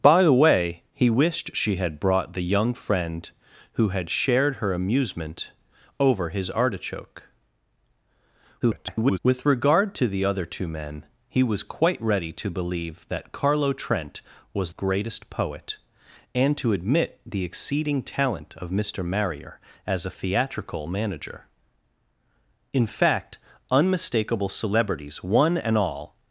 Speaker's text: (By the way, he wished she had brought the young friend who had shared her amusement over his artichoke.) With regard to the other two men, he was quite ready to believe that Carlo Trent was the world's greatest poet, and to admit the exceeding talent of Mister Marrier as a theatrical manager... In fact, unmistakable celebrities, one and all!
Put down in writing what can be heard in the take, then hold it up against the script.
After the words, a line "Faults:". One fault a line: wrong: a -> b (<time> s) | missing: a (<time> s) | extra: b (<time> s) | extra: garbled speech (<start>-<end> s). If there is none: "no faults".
(By the way, he wished she had brought the young friend who had shared her amusement over his artichoke.) [garbled] With regard to the other two men, he was quite ready to believe that Carlo Trent was greatest poet, and to admit the exceeding talent of Mister Marrier as a theatrical manager... In fact, unmistakable celebrities, one and all!
Faults:
extra: garbled speech (8.6-9.2 s)
missing: the world's (14.7 s)